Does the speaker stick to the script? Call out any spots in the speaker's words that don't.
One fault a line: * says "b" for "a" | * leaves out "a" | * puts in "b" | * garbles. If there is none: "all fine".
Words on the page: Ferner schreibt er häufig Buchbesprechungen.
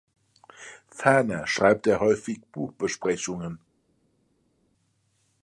all fine